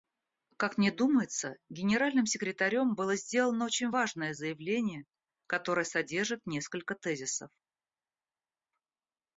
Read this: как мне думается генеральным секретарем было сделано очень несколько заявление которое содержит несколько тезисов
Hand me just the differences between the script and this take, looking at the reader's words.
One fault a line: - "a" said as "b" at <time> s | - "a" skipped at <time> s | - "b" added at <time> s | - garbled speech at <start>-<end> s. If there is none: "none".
- "несколько" said as "важное" at 3.9 s